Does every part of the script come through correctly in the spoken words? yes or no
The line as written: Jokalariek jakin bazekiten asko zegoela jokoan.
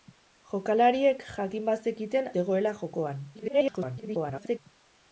no